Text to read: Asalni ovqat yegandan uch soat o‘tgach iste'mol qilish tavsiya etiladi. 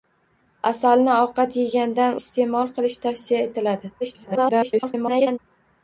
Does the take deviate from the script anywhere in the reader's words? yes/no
yes